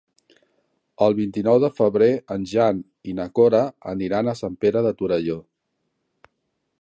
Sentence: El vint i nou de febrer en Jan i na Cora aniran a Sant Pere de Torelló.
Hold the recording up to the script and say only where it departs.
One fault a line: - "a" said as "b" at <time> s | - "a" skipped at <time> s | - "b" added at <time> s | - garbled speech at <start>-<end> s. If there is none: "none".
none